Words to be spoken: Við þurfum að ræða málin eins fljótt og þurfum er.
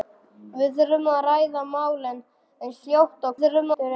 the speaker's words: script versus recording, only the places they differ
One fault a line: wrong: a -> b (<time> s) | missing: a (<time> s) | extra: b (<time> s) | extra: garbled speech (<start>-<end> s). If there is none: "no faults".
no faults